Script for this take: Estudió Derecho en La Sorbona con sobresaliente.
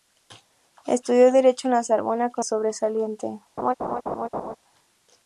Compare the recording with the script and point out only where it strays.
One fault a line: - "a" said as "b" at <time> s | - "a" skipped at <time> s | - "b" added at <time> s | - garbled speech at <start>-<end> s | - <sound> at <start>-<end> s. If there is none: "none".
- laugh at 3.6-4.6 s